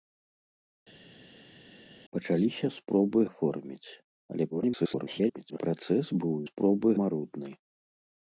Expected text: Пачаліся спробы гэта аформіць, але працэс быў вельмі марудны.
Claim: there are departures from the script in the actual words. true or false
true